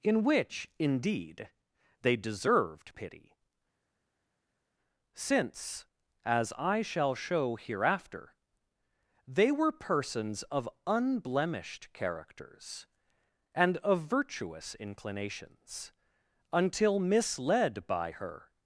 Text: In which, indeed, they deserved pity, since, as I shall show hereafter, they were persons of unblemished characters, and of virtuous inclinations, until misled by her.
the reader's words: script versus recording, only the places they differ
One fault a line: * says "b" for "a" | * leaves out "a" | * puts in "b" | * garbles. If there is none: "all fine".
all fine